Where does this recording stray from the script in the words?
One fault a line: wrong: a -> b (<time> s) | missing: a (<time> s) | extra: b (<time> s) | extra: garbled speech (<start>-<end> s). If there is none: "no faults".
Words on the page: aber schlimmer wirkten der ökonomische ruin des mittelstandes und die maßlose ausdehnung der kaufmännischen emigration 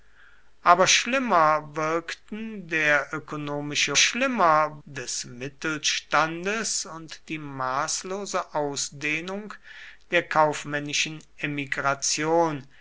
wrong: ruin -> schlimmer (4.0 s)